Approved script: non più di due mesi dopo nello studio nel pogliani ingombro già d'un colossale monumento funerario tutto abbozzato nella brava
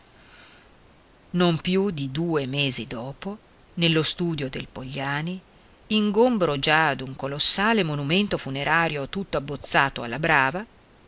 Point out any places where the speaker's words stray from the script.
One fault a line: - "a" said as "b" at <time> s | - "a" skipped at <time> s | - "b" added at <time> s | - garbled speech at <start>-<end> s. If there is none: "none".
- "nel" said as "del" at 4.5 s
- "nella" said as "alla" at 10.0 s